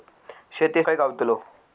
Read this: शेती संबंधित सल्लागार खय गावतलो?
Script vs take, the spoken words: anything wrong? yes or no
yes